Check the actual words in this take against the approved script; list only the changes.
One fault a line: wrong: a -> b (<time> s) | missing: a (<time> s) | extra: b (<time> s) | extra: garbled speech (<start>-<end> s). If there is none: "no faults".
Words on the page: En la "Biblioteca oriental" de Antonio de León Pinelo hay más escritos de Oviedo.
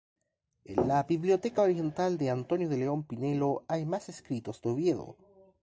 no faults